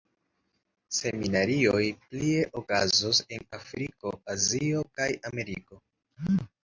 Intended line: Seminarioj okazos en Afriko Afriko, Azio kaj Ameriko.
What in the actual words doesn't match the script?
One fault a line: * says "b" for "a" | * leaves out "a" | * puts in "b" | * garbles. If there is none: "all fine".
* puts in "plie"
* leaves out "Afriko"